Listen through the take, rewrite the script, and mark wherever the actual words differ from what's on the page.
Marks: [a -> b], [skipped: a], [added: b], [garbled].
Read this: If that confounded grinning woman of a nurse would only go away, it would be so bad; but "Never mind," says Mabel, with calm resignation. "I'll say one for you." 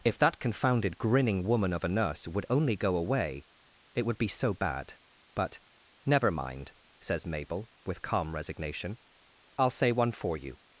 If that confounded grinning woman of a nurse would only go away, it would be so bad; but "Never mind," says Mabel, with calm resignation. "I'll say one for you."